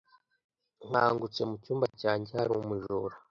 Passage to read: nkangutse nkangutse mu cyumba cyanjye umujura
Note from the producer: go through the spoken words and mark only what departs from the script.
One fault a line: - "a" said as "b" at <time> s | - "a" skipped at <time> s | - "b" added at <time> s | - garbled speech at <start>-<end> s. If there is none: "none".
- "nkangutse" skipped at 1.4 s
- "hari" added at 2.4 s